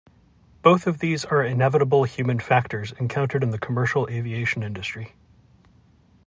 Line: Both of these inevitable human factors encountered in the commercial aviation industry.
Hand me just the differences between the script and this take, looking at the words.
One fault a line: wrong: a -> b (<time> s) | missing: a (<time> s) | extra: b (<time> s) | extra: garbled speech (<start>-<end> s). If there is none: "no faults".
extra: are (1.2 s)